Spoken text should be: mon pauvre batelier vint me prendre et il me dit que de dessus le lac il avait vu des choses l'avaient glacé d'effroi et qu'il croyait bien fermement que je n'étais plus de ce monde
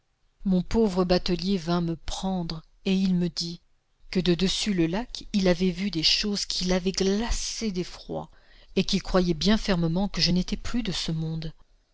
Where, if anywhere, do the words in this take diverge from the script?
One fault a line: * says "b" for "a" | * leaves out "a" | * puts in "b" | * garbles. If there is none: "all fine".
* puts in "qui"